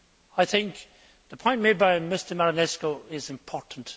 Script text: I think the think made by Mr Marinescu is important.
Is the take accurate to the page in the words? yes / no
no